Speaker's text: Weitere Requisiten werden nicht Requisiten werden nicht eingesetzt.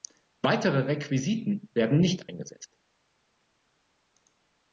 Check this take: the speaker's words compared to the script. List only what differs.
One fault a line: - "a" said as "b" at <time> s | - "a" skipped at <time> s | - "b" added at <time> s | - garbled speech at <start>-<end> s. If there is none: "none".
- "Requisiten werden nicht" skipped at 2.3 s